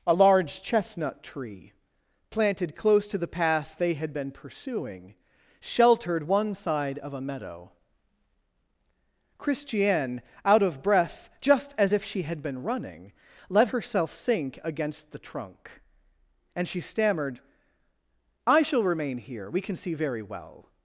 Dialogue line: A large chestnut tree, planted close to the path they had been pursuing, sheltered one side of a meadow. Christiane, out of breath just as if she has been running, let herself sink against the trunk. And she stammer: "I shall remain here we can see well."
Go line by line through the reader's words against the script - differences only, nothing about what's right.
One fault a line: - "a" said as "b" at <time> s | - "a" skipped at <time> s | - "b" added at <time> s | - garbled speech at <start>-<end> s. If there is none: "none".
- "has" said as "had" at 12.2 s
- "stammer" said as "stammered" at 16.8 s
- "very" added at 19.9 s